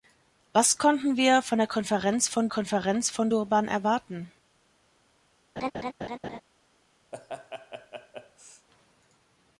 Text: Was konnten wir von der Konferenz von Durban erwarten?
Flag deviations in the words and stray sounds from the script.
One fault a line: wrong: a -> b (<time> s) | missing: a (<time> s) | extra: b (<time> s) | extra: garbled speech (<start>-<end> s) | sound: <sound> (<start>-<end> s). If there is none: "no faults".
extra: Konferenz von (2.5 s)
sound: laugh (5.6-6.4 s)
sound: laugh (7.1-8.7 s)